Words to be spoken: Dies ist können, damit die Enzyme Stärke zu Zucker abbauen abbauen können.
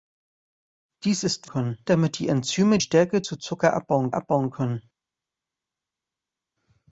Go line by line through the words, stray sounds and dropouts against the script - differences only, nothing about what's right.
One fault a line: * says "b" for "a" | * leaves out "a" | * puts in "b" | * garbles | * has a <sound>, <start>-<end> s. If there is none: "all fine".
all fine